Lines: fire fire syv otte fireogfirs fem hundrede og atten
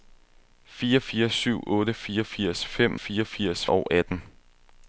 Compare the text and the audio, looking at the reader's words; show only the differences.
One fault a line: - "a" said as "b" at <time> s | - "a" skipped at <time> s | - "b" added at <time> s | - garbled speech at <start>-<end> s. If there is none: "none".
- "hundrede" said as "fireogfirs" at 2.9 s